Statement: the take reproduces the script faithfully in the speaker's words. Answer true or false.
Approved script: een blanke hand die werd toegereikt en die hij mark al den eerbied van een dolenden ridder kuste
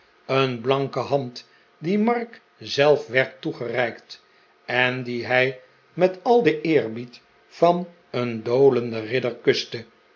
false